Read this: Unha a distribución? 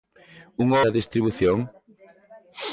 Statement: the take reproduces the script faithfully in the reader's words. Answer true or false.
true